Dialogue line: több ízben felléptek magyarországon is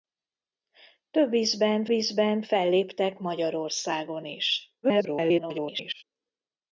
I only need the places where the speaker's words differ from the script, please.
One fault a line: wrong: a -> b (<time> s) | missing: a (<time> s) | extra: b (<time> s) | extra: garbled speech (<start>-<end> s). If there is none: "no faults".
extra: ízben (1.9 s)
extra: garbled speech (4.8-6.0 s)